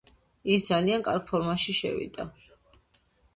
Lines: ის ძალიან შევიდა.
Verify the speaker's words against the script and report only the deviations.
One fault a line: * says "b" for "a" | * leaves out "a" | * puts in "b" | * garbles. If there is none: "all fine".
* puts in "კარგ ფორმაში"